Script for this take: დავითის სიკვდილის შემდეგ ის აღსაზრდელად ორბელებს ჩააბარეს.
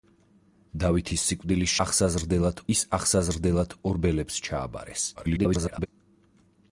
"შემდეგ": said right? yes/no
no